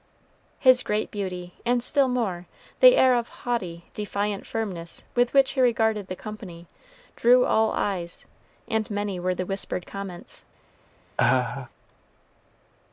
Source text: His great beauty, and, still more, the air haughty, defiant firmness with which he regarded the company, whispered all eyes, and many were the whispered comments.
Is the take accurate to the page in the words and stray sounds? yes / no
no